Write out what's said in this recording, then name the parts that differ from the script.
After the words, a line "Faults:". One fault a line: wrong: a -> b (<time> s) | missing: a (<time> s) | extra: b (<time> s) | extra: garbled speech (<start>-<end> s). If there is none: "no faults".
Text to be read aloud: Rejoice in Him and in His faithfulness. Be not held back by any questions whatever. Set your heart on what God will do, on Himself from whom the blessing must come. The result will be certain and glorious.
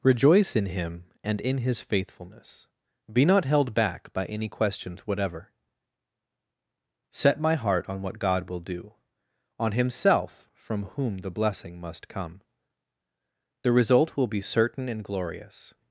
Rejoice in Him and in His faithfulness. Be not held back by any questions whatever. Set my heart on what God will do, on Himself from whom the blessing must come. The result will be certain and glorious.
Faults:
wrong: your -> my (7.4 s)